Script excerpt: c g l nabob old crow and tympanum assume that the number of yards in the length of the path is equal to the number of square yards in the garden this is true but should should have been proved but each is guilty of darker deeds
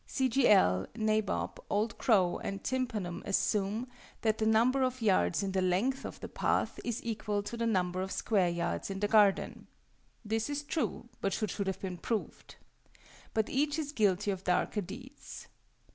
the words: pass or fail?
pass